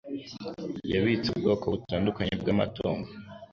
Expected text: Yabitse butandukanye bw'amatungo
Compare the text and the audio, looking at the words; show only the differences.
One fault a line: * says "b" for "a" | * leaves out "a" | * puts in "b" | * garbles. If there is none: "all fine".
* puts in "ubwoko"